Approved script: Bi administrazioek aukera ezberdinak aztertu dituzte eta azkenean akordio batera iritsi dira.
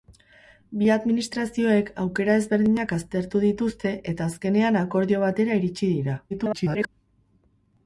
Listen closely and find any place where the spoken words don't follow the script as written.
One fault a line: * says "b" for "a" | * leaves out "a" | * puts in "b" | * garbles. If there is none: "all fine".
* garbles